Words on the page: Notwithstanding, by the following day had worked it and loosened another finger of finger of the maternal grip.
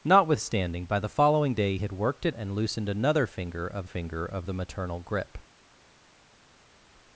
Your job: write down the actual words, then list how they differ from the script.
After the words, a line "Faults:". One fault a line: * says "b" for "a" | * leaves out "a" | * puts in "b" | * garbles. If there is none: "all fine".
Notwithstanding, by the following day had worked it and loosened another finger of finger of the maternal grip.
Faults:
all fine